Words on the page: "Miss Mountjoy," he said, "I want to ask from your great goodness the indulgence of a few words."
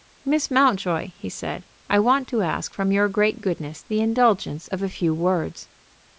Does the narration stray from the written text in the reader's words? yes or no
no